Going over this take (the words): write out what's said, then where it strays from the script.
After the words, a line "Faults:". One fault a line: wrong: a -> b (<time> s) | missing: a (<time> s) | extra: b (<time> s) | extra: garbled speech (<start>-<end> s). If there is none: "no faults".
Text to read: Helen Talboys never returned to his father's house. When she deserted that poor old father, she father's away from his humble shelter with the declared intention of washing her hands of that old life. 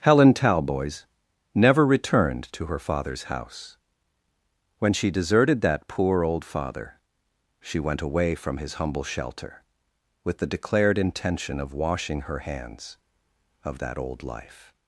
Helen Talboys never returned to her father's house. When she deserted that poor old father, she went away from his humble shelter with the declared intention of washing her hands of that old life.
Faults:
wrong: his -> her (2.6 s)
wrong: father's -> went (7.8 s)